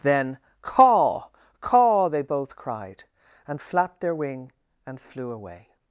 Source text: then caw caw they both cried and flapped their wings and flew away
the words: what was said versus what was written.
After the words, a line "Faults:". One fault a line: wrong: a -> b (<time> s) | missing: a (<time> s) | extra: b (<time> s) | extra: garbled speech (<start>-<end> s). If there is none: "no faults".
then caw caw they both cried and flapped their wing and flew away
Faults:
wrong: wings -> wing (4.2 s)